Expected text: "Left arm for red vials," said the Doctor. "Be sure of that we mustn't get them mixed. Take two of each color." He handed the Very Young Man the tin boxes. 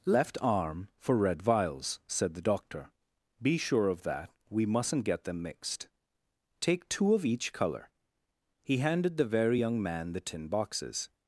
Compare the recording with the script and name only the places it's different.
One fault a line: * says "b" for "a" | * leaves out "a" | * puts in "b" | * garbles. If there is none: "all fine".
all fine